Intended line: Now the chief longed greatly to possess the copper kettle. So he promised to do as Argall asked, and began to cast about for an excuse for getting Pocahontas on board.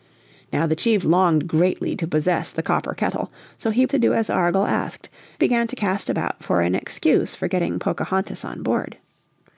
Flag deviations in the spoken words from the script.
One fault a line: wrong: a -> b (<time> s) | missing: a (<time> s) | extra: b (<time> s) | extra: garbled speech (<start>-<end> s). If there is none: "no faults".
missing: promised (3.9 s)
missing: and (5.1 s)